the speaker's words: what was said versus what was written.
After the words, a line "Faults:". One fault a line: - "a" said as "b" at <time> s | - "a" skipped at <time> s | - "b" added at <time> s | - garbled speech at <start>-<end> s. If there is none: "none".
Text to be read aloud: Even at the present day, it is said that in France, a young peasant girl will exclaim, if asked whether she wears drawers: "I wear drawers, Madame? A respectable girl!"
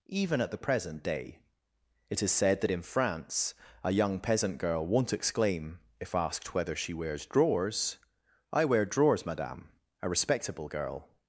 Even at the present day, it is said that in France, a young peasant girl won't exclaim, if asked whether she wears drawers: "I wear drawers, Madame? A respectable girl!"
Faults:
- "will" said as "won't" at 4.8 s